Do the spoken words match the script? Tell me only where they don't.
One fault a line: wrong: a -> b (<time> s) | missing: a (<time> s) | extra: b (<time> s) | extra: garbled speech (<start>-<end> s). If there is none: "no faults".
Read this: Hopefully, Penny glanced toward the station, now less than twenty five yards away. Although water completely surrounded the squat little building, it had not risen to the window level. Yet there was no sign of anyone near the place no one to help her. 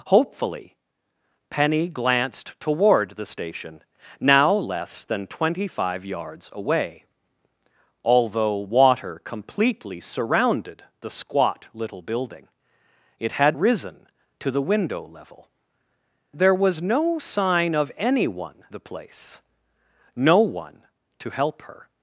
missing: not (13.6 s)
missing: Yet (15.5 s)
missing: near (18.6 s)